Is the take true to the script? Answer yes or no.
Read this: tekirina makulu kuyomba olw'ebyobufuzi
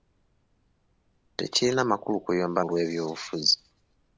yes